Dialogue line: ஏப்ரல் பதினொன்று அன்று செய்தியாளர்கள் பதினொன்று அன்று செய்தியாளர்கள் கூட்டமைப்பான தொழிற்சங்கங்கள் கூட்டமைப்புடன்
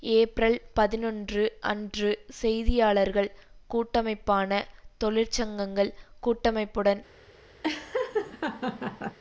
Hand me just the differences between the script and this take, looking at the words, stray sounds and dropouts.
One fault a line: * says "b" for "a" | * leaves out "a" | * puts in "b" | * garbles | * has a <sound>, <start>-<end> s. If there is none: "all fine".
* leaves out "பதினொன்று அன்று செய்தியாளர்கள்"
* has a laugh, 7.6-9.2 s